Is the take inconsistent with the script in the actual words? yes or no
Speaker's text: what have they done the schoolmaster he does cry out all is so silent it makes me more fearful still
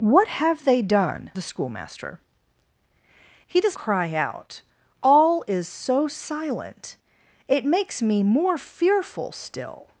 no